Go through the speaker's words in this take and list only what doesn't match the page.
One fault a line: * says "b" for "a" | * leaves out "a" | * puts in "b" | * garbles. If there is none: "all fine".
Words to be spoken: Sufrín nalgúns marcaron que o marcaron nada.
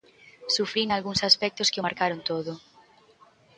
* says "aspectos" for "marcaron"
* says "todo" for "nada"